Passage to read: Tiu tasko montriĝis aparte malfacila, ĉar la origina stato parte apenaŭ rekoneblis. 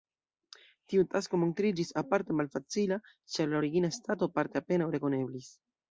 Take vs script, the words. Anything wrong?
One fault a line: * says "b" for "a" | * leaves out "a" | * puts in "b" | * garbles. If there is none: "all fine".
all fine